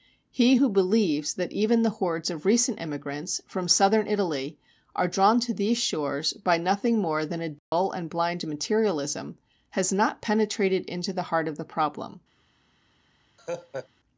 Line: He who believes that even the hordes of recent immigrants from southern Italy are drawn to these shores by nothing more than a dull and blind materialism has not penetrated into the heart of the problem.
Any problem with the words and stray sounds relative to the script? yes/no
yes